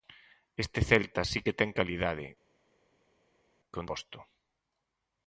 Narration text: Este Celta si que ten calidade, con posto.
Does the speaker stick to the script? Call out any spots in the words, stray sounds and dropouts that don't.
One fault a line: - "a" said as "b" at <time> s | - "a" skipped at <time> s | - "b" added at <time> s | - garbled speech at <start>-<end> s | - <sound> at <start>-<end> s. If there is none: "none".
none